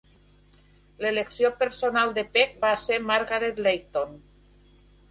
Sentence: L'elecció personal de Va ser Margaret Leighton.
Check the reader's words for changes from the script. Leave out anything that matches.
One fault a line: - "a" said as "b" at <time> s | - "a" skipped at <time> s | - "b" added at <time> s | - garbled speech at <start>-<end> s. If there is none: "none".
- "Peck" added at 2.4 s